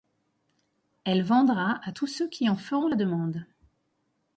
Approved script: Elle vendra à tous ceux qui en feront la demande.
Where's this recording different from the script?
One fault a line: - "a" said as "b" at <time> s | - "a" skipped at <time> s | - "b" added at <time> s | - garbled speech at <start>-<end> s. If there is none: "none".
none